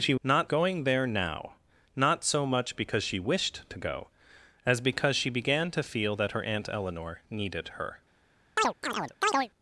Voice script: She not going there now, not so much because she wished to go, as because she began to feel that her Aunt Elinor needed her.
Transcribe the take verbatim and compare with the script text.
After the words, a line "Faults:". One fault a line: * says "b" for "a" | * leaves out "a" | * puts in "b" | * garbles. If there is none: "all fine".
She not going there now, not so much because she wished to go, as because she began to feel that her Aunt Elinor needed her.
Faults:
all fine